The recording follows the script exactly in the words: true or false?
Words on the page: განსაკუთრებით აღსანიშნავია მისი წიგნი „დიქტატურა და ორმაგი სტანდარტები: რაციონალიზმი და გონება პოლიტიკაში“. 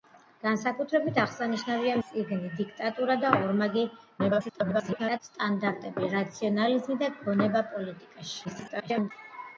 false